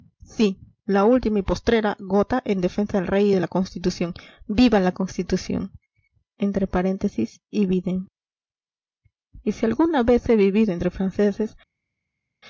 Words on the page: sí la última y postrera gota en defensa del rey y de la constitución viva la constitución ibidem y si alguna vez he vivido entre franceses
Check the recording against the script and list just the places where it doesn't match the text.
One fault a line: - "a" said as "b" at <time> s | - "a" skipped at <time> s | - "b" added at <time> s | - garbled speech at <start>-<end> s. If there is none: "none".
none